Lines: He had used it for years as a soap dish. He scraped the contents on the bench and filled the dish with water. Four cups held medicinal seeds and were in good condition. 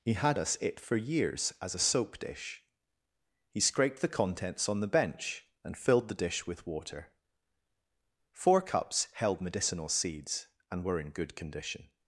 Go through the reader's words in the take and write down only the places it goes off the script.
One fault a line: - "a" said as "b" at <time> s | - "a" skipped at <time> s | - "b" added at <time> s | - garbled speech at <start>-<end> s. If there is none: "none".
- "used" said as "us" at 0.4 s